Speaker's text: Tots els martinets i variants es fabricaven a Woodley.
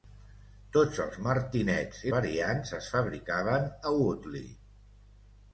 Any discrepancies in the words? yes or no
no